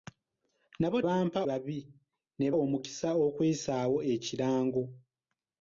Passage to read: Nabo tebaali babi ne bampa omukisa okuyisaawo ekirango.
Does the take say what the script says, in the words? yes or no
no